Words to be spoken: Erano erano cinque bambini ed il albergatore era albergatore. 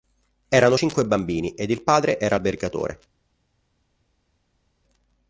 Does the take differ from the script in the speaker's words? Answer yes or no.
yes